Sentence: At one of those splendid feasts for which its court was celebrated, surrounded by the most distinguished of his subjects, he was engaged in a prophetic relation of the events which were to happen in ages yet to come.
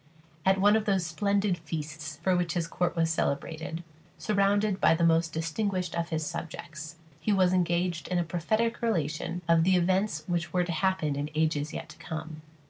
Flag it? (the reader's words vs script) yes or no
yes